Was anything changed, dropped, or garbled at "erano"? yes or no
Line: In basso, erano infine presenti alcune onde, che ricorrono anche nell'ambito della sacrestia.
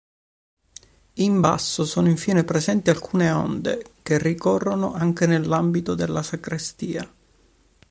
yes